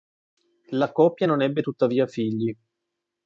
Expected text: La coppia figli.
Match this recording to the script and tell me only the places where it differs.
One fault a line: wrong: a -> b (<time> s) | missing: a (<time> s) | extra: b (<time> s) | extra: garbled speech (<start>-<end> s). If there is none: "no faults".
extra: non ebbe tuttavia (1.2 s)